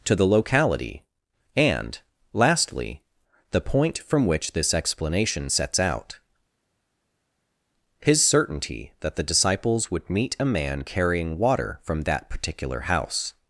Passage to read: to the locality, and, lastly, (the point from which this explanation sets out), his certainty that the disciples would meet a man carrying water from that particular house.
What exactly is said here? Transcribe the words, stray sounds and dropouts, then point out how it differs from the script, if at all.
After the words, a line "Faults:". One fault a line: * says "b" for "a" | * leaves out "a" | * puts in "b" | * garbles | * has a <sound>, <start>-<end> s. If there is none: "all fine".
to the locality, and, lastly, (the point from which this explanation sets out), his certainty that the disciples would meet a man carrying water from that particular house.
Faults:
all fine